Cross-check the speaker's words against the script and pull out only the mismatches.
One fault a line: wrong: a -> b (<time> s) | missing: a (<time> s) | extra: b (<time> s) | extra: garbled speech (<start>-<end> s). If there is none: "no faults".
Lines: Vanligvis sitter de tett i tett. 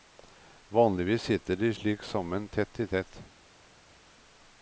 extra: slik sammen (1.7 s)